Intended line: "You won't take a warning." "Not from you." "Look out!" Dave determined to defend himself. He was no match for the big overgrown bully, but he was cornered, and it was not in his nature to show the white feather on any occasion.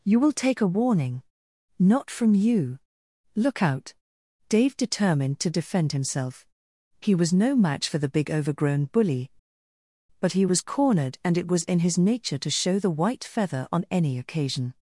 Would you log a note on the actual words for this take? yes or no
yes